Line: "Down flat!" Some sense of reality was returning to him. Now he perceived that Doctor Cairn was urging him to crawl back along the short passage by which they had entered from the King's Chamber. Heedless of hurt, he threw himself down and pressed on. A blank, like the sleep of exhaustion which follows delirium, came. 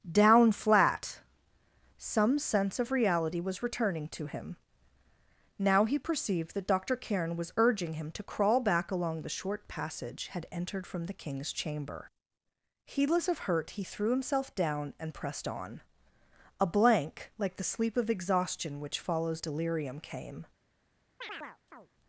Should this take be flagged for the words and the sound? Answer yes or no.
yes